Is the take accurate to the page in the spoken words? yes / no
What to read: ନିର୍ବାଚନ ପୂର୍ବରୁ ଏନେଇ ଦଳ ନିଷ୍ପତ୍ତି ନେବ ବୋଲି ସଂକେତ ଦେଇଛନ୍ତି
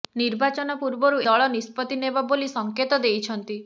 no